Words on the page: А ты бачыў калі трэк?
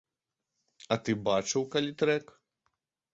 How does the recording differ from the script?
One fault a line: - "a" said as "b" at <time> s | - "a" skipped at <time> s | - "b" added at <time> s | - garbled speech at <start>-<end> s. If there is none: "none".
none